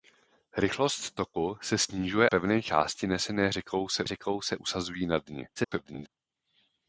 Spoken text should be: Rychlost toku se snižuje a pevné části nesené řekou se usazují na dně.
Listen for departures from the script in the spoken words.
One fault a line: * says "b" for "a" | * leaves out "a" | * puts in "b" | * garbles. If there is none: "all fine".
* leaves out "a"
* puts in "řekou se"
* garbles